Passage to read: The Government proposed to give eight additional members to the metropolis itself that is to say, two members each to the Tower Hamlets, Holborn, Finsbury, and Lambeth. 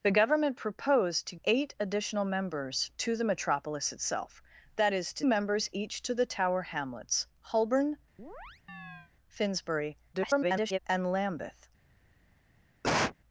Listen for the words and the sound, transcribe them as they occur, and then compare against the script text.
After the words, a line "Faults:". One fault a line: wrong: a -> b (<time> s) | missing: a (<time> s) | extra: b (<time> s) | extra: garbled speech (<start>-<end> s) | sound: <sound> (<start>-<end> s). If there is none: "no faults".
The Government proposed to eight additional members to the metropolis itself that is to members each to the Tower Hamlets, Holborn, Finsbury, [garbled] and Lambeth.
Faults:
missing: give (1.4 s)
missing: say two (5.2 s)
sound: chirp (8.2-9.1 s)
extra: garbled speech (10.1-10.8 s)
sound: cough (12.8-13.2 s)